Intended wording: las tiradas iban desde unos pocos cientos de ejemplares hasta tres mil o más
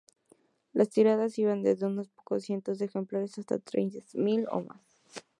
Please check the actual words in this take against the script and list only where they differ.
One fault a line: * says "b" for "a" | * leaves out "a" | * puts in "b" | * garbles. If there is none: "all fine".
all fine